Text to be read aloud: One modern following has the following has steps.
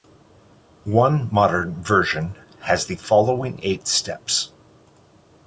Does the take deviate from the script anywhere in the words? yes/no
yes